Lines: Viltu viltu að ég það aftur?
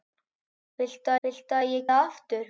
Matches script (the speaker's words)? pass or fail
pass